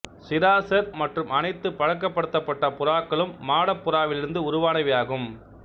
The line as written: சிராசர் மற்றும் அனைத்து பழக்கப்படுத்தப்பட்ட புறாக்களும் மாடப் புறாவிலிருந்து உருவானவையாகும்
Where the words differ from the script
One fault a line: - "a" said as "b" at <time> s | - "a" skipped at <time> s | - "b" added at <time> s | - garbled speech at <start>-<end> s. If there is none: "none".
none